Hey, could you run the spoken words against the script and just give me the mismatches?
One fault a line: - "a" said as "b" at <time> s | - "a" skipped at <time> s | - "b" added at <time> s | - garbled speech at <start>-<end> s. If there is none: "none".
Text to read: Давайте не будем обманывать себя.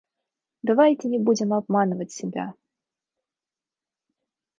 none